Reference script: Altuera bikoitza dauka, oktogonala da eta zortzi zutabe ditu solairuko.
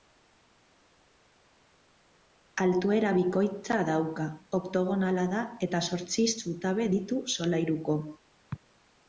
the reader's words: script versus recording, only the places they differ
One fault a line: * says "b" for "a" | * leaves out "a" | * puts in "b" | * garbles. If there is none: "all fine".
all fine